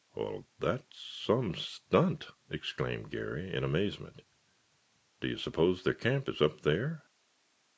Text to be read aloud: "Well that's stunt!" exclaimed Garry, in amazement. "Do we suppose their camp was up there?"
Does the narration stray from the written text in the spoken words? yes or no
yes